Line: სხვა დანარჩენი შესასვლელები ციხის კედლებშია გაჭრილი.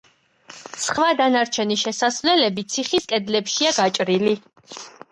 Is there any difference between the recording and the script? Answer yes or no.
no